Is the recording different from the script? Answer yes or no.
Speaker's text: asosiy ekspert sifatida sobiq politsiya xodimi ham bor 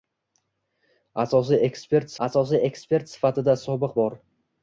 yes